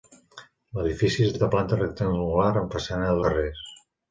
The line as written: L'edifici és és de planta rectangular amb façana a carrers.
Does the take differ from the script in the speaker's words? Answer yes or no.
no